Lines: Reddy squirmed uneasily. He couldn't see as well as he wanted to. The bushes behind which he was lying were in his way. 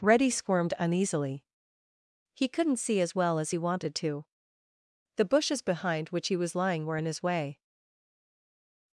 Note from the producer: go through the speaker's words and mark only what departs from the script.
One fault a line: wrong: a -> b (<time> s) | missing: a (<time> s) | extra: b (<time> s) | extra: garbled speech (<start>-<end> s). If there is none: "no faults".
no faults